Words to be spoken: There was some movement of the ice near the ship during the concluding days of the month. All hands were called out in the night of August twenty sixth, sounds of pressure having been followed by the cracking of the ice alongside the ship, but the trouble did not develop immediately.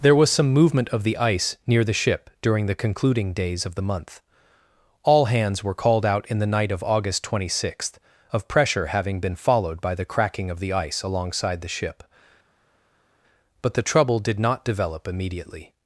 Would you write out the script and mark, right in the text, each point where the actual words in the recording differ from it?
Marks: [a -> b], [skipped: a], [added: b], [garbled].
There was some movement of the ice near the ship during the concluding days of the month. All hands were called out in the night of August twenty sixth, [skipped: sounds] of pressure having been followed by the cracking of the ice alongside the ship, but the trouble did not develop immediately.